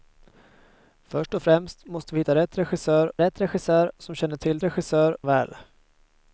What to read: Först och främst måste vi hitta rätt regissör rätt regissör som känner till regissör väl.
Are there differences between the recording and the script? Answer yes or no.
no